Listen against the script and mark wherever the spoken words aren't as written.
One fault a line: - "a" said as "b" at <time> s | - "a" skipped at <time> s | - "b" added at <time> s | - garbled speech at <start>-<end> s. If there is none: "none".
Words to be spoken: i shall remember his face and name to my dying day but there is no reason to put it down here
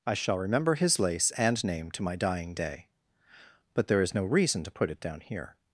- "face" said as "lace" at 1.0 s